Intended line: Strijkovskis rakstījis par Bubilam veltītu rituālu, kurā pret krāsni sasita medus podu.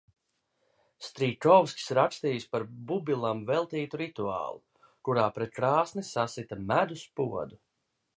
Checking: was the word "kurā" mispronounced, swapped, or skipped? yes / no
no